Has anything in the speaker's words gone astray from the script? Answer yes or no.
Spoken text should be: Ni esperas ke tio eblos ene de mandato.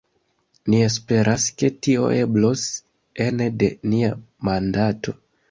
yes